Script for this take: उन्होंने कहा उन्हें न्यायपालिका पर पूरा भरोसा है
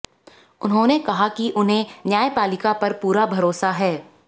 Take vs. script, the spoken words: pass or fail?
fail